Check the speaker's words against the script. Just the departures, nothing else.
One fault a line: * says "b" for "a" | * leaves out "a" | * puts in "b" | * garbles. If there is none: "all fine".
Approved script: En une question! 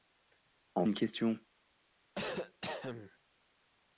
all fine